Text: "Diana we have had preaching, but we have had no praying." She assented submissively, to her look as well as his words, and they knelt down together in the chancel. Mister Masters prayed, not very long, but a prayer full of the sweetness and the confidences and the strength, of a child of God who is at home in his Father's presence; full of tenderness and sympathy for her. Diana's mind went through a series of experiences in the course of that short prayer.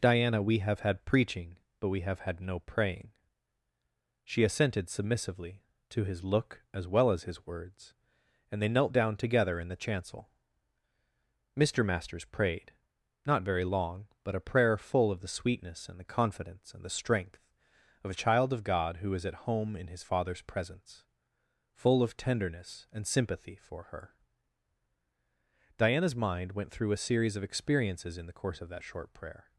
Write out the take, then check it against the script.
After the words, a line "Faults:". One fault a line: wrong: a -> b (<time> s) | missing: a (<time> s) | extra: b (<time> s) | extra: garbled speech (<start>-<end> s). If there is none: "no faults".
"Diana we have had preaching, but we have had no praying." She assented submissively, to his look as well as his words, and they knelt down together in the chancel. Mister Masters prayed, not very long, but a prayer full of the sweetness and the confidence and the strength, of a child of God who is at home in his Father's presence; full of tenderness and sympathy for her. Diana's mind went through a series of experiences in the course of that short prayer.
Faults:
wrong: her -> his (6.0 s)
wrong: confidences -> confidence (16.0 s)